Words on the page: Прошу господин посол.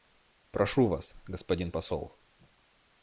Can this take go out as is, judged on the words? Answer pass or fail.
fail